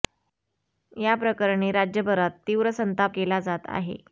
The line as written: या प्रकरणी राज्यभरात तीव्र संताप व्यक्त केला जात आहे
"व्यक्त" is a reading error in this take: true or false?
true